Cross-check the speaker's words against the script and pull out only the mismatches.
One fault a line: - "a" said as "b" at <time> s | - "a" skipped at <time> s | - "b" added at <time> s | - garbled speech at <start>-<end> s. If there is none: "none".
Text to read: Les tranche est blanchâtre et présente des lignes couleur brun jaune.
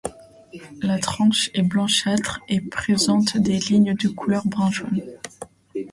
- "Les" said as "La" at 0.8 s
- "de" added at 4.0 s